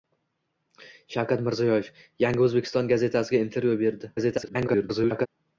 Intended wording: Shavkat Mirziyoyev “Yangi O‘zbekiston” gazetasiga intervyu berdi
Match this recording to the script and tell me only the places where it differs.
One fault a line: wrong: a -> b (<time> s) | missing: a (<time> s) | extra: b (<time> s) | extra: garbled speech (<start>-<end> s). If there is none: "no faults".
extra: garbled speech (4.2-5.3 s)